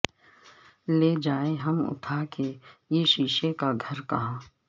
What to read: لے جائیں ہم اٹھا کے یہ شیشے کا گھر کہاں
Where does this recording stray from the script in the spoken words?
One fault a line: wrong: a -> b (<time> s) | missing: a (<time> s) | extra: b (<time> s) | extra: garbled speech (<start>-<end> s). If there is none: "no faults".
no faults